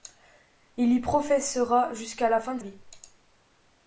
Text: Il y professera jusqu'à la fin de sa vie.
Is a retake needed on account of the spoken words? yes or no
yes